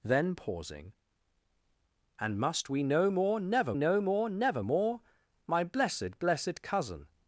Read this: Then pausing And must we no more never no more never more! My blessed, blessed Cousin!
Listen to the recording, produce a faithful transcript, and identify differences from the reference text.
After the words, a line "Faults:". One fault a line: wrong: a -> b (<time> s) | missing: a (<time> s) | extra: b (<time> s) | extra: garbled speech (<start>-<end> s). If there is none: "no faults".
Then pausing And must we no more never no more never more! My blessed, blessed Cousin!
Faults:
no faults